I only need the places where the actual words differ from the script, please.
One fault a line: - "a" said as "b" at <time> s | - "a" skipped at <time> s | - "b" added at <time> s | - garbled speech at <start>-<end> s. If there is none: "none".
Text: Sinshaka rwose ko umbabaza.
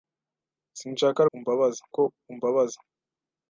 - "rwose" said as "umbabaza" at 1.3 s